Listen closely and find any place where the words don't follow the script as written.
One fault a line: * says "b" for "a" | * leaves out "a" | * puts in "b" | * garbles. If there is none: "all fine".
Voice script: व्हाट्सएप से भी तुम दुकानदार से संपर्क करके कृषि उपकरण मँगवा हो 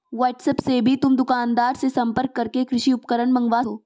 all fine